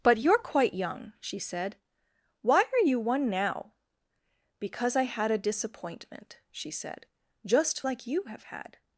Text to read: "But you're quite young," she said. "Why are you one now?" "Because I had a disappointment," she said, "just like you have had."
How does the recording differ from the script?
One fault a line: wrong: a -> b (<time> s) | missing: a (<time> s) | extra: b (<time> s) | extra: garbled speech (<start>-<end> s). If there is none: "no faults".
no faults